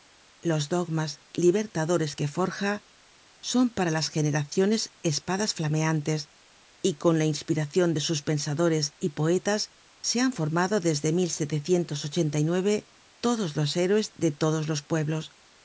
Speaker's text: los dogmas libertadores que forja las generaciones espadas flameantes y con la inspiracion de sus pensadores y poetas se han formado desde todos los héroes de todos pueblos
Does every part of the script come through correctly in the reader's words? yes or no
no